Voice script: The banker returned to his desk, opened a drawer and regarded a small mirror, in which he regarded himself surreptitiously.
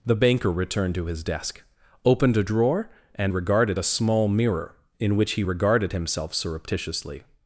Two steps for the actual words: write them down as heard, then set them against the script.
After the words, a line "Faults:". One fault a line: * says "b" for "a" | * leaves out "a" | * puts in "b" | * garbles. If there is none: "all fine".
The banker returned to his desk, opened a drawer and regarded a small mirror, in which he regarded himself surreptitiously.
Faults:
all fine